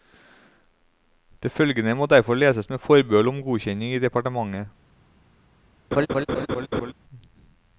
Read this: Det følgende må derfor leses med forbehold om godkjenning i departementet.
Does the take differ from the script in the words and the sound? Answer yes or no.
yes